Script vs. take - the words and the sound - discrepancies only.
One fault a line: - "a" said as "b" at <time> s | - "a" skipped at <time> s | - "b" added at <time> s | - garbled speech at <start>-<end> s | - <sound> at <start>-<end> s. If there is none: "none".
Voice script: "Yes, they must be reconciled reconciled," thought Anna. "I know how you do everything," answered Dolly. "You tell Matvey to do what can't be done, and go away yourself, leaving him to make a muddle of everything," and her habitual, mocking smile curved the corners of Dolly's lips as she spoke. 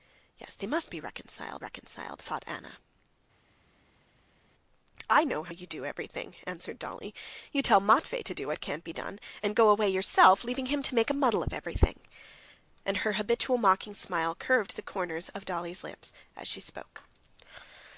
none